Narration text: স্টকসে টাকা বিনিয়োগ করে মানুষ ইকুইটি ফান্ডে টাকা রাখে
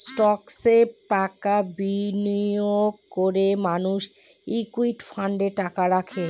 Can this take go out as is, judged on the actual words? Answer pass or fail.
pass